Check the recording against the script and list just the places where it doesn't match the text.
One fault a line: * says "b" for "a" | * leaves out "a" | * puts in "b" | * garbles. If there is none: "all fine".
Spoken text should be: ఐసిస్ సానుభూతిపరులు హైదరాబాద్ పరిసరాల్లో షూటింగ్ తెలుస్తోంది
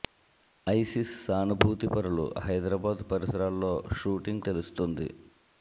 all fine